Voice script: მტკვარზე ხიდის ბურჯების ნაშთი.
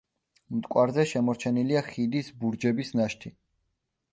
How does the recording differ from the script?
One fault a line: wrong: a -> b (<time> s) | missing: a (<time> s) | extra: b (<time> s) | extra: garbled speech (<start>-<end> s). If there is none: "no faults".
extra: შემორჩენილია (1.1 s)